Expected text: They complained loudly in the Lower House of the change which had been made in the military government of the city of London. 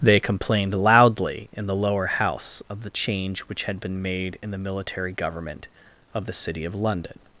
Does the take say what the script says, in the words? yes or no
yes